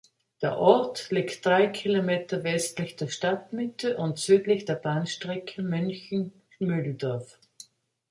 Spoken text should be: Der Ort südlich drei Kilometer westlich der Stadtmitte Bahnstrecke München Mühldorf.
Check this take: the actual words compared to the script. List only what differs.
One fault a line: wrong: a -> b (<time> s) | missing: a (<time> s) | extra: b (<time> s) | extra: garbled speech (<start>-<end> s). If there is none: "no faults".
wrong: südlich -> liegt (1.1 s)
extra: und südlich der (4.0 s)